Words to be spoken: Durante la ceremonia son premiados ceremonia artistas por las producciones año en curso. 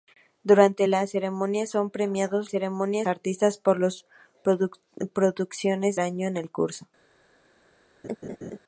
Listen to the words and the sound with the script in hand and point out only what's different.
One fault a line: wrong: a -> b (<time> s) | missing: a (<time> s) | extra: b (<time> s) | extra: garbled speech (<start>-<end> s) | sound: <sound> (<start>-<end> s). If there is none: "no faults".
sound: laugh (8.0-8.6 s)